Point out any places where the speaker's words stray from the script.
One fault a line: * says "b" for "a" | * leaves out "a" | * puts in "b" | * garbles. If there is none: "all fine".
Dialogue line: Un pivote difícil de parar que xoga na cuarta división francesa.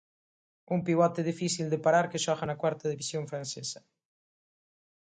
all fine